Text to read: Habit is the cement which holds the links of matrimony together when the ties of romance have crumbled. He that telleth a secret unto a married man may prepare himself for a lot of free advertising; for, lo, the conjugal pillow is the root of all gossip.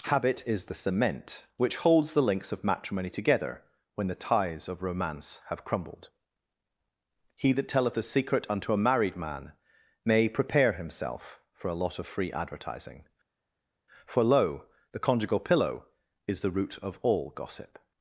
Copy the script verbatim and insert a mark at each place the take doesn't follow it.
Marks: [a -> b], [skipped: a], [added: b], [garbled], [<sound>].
Habit is the cement which holds the links of matrimony together when the ties of romance have crumbled. He that telleth a secret unto a married man may prepare himself for a lot of free advertising; for, lo, the conjugal pillow is the root of all gossip.